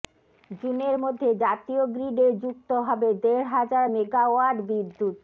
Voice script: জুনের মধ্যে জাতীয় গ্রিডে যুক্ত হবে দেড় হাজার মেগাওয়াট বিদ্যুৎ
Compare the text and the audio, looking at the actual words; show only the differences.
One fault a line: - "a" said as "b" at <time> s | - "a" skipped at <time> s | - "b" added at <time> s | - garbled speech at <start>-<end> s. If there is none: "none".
none